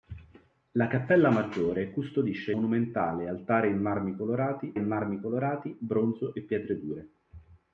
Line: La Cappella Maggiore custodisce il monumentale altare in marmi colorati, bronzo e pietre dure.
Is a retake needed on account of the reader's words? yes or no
yes